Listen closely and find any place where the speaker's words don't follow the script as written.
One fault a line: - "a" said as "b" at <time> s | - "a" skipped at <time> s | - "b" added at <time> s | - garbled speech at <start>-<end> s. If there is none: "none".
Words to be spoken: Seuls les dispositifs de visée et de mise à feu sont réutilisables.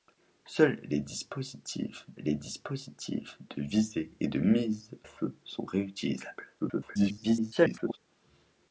- "les dispositifs" added at 2.2 s
- "à" skipped at 4.9 s
- garbled speech at 6.6-8.0 s